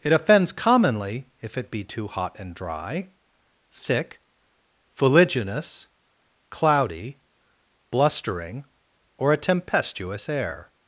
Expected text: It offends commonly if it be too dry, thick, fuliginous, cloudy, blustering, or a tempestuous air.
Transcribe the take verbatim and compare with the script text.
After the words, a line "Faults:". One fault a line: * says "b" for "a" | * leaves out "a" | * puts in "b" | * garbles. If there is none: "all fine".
It offends commonly if it be too hot and dry, thick, fuliginous, cloudy, blustering, or a tempestuous air.
Faults:
* puts in "hot and"